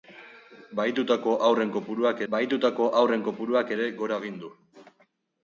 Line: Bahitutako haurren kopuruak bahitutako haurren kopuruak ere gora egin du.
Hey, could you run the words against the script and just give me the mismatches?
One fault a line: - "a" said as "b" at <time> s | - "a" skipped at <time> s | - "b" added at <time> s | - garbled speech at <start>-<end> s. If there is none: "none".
none